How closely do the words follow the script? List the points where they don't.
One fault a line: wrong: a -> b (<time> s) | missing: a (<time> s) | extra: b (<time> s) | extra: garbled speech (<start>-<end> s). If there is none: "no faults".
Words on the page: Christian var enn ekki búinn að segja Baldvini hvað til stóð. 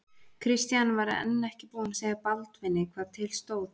no faults